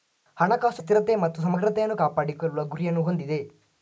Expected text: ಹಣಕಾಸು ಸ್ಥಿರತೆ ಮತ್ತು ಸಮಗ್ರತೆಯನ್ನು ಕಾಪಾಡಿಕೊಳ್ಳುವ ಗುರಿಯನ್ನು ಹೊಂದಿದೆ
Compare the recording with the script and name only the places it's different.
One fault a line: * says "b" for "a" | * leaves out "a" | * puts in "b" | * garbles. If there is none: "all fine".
all fine